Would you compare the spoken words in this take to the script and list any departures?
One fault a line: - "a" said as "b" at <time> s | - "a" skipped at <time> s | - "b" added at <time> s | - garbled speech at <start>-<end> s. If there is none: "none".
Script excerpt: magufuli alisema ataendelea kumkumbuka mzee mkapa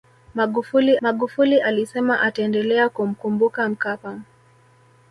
- "magufuli" added at 1.0 s
- "mzee" skipped at 3.7 s